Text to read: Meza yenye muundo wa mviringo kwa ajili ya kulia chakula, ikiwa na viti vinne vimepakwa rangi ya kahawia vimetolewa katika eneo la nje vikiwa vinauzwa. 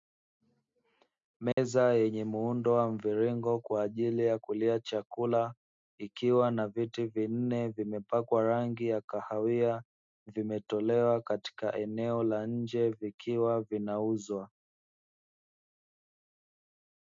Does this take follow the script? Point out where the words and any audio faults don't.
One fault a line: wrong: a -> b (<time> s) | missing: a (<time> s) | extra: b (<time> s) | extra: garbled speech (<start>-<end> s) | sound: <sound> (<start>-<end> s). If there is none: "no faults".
sound: dropout (1.5-1.6 s)